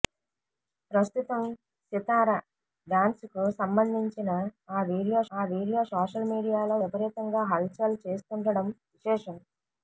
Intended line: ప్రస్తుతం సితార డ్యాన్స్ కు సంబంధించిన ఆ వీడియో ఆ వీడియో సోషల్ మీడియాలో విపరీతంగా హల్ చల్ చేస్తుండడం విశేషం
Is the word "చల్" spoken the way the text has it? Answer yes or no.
yes